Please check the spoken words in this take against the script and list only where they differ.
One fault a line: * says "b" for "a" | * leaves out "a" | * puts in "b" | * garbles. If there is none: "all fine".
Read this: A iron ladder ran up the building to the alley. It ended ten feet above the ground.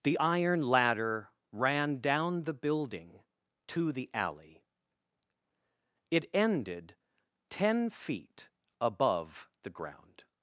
* says "The" for "A"
* says "down" for "up"